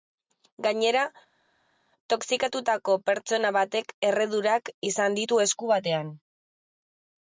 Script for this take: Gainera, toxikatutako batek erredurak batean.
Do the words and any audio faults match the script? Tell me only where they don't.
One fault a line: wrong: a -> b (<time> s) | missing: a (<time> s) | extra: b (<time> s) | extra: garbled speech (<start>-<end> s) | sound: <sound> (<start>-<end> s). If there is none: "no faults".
extra: pertsona (3.1 s)
extra: izan ditu esku (4.9 s)